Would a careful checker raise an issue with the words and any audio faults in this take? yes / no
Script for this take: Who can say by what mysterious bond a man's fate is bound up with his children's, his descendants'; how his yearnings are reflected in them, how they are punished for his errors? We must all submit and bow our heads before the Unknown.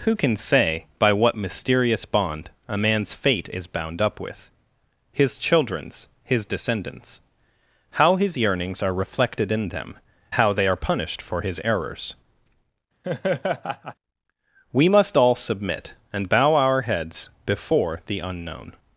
yes